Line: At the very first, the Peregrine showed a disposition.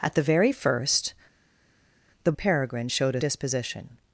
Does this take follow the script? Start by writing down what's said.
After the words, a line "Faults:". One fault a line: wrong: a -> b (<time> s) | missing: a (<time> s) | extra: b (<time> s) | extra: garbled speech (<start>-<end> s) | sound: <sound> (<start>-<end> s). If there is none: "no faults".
At the very first, the Peregrine showed a disposition.
Faults:
no faults